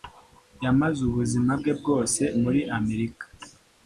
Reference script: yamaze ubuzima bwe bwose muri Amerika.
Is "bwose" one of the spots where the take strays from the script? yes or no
no